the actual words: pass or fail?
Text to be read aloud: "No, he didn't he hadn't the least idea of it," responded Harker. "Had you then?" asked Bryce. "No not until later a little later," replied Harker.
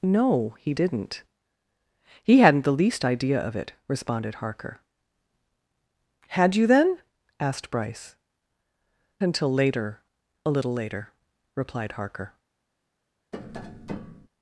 fail